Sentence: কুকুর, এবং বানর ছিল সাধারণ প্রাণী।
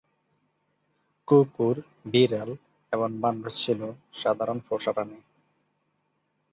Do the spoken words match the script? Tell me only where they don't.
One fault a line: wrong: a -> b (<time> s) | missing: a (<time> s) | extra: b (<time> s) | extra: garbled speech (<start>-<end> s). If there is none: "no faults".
extra: বিড়াল (2.0 s)
extra: পোষা (4.7 s)